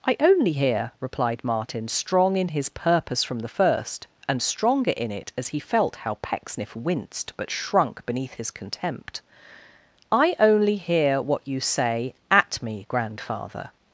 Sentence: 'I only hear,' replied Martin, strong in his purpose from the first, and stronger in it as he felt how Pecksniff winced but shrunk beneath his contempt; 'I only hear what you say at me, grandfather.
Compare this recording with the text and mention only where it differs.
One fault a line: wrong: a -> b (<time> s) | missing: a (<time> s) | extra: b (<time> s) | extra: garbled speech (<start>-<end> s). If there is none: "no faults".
no faults